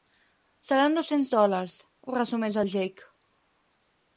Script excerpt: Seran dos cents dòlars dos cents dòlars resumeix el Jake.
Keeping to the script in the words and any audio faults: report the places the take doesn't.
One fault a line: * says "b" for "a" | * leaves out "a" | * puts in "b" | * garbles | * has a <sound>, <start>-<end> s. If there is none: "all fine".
* leaves out "dos cents dòlars"